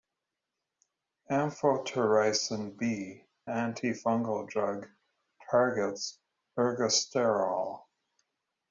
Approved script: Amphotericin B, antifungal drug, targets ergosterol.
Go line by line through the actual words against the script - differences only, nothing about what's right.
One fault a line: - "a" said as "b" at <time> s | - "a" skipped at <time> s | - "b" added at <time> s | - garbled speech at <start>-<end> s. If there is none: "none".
none